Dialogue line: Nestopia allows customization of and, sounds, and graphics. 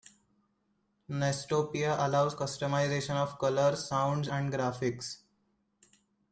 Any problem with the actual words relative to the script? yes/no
yes